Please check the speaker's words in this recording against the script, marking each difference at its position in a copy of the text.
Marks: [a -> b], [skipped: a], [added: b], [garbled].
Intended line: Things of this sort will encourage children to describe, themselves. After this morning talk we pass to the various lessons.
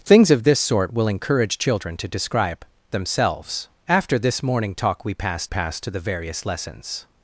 Things of this sort will encourage children to describe, themselves. After this morning talk we pass [added: pass] to the various lessons.